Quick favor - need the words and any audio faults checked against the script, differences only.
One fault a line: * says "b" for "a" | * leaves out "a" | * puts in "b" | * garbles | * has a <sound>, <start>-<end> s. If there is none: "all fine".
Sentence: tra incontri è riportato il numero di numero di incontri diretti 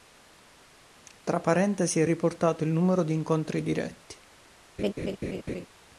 * says "parentesi" for "incontri"
* leaves out "numero di"
* has a laugh, 4.8-5.7 s